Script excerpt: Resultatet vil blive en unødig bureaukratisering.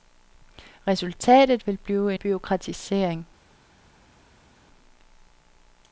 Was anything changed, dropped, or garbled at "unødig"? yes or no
yes